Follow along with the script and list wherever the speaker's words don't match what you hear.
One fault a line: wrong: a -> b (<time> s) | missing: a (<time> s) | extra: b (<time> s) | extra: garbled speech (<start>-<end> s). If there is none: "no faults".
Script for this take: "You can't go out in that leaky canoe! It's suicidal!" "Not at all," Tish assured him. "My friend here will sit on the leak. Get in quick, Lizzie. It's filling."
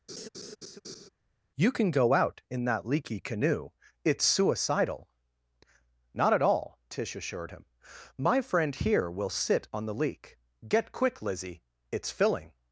wrong: can't -> can (1.7 s)
missing: in (10.9 s)